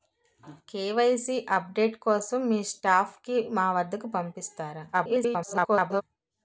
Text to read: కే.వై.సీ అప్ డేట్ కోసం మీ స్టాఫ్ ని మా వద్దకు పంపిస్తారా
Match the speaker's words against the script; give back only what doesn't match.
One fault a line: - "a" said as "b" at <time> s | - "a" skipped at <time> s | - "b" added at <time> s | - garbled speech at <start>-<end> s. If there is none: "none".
- garbled speech at 4.9-6.0 s